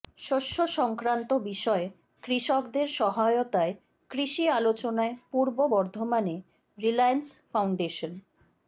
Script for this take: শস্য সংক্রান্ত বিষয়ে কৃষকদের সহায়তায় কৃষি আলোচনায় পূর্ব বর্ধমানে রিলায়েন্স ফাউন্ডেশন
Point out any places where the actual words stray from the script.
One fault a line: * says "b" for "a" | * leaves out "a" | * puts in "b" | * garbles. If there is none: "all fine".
all fine